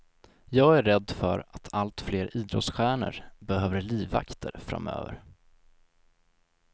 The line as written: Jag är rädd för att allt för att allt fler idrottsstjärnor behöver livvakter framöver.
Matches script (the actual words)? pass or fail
fail